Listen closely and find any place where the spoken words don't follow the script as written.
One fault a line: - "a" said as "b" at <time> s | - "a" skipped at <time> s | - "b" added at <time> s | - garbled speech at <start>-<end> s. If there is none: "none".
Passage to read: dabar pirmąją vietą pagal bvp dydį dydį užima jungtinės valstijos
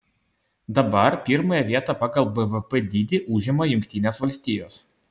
- "dydį" skipped at 3.2 s